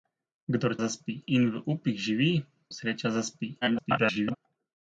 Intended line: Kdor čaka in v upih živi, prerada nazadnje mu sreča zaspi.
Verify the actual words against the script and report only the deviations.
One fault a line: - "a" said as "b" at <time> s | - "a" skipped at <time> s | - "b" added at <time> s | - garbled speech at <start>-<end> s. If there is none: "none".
- "čaka" said as "zaspi" at 0.8 s
- "prerada nazadnje mu" skipped at 2.3 s
- garbled speech at 3.6-4.4 s